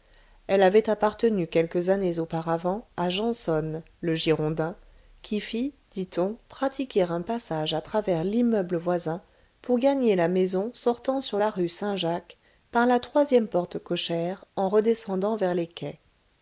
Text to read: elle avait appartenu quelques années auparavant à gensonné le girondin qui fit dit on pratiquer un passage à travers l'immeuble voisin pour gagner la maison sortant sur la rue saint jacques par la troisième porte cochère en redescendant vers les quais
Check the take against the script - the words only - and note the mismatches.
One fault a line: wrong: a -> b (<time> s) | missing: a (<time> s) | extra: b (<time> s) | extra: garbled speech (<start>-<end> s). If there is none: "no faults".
no faults